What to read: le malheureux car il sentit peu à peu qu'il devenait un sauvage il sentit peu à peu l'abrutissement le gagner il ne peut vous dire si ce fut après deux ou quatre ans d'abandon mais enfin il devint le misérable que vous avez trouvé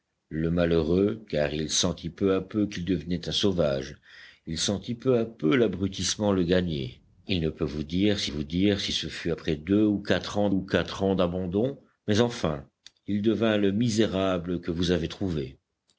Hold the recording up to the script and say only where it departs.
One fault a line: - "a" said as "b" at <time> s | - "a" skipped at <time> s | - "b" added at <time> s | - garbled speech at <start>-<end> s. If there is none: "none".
- "vous dire si" added at 8.2 s
- "ou quatre ans" added at 10.5 s